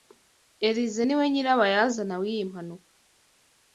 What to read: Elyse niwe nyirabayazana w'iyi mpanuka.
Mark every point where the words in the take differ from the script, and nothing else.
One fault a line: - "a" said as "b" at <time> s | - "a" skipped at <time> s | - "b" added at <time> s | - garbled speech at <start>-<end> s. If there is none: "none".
none